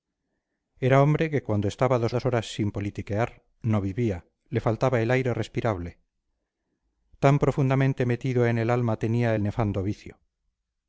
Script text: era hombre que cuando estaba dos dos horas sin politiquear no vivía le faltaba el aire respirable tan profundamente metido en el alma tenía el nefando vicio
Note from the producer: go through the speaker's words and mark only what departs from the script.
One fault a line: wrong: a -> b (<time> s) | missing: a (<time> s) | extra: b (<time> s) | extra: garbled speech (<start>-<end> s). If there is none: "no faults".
no faults